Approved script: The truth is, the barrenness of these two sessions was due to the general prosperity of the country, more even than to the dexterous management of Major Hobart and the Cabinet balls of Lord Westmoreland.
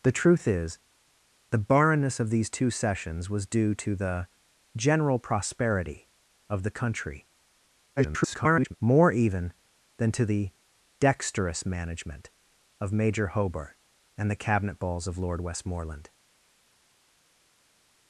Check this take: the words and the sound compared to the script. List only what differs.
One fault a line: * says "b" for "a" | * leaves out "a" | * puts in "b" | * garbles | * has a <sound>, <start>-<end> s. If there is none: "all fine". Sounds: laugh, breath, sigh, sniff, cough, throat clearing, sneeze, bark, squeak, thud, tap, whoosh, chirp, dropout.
* garbles